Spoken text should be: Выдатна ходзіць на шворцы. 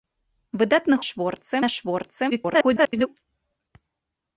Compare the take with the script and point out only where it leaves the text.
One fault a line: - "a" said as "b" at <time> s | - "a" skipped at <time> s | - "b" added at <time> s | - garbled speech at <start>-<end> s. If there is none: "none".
- "ходзіць" said as "шворцы" at 1.1 s
- garbled speech at 2.3-3.1 s